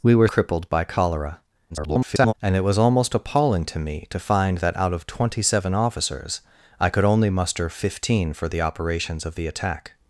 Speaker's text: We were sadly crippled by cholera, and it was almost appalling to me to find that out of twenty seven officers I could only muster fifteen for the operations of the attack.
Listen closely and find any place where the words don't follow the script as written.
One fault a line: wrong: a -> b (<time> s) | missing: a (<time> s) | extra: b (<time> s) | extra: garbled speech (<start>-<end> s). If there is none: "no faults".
missing: sadly (0.3 s)
extra: garbled speech (1.7-2.3 s)